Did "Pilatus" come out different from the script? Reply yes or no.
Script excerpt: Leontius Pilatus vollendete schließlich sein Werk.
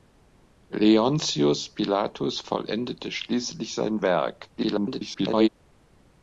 no